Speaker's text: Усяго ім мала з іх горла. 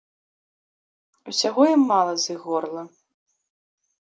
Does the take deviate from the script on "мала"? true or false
false